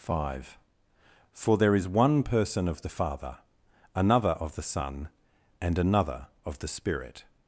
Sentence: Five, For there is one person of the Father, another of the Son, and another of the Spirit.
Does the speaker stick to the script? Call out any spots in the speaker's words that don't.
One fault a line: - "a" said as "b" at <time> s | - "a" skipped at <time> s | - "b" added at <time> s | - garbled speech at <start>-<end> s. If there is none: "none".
none